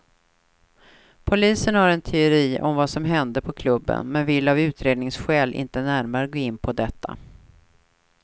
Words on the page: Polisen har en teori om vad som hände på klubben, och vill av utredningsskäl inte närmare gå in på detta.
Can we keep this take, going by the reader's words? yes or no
no